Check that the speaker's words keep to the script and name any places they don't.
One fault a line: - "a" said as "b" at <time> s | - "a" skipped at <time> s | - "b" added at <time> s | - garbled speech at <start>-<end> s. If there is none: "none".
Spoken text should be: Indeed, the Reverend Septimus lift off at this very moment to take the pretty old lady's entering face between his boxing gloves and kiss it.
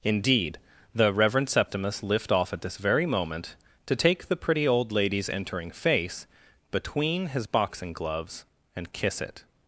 none